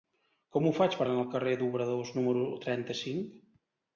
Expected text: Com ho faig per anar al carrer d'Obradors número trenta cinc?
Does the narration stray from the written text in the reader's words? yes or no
no